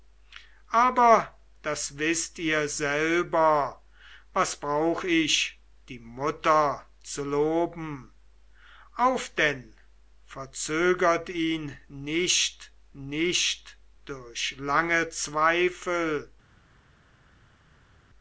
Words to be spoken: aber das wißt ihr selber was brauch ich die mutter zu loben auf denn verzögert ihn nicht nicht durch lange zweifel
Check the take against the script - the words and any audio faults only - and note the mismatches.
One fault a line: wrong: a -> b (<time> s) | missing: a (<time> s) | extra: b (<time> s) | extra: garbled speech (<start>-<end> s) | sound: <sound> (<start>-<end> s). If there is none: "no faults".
no faults